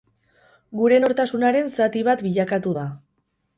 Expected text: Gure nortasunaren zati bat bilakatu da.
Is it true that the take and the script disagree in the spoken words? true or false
false